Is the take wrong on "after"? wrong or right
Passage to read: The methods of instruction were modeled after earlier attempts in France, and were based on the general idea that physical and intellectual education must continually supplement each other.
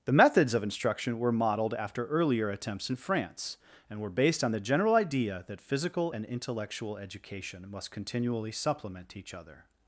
right